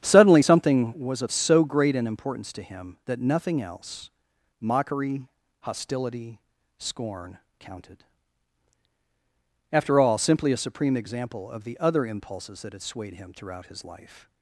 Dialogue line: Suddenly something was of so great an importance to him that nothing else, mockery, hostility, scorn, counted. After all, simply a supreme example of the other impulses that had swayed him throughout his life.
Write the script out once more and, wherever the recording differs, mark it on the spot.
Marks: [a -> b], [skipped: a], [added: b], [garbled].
Suddenly something was of so great an importance to him that nothing else, mockery, hostility, scorn, counted. After all, simply a supreme example of the other impulses that had swayed him throughout his life.